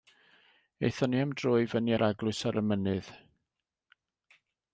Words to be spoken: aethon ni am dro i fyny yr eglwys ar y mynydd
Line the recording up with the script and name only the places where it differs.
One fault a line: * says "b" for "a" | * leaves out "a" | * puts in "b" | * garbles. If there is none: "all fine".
all fine